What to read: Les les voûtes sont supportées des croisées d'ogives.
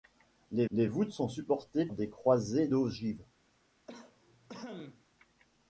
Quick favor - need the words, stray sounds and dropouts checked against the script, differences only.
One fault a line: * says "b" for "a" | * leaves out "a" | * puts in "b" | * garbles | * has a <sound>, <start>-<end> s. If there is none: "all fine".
* has a cough, 3.9-5.0 s